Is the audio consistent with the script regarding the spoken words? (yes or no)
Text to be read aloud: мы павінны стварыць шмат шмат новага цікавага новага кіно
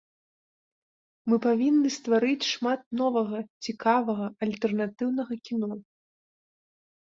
no